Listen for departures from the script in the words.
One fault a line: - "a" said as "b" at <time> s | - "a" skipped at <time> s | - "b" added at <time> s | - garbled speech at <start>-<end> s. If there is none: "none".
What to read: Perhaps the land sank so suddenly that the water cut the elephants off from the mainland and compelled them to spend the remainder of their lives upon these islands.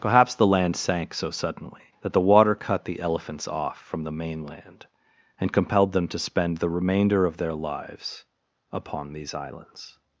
none